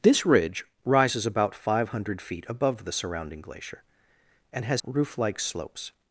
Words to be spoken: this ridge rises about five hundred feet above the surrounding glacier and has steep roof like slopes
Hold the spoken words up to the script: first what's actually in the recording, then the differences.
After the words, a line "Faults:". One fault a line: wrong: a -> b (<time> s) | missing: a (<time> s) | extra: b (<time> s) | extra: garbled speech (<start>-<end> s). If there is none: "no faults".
this ridge rises about five hundred feet above the surrounding glacier and has roof like slopes
Faults:
missing: steep (4.8 s)